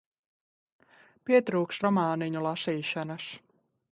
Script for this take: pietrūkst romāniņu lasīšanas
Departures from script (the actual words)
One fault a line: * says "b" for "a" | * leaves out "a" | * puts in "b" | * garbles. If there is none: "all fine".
all fine